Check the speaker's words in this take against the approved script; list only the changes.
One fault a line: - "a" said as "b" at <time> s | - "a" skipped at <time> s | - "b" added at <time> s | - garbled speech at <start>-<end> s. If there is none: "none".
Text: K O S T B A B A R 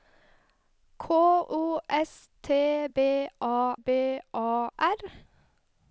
none